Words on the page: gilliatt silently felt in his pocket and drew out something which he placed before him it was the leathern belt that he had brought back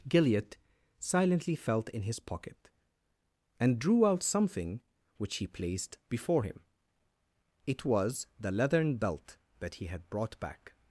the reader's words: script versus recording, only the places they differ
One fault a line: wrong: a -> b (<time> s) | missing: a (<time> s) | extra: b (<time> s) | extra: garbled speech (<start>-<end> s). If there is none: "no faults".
no faults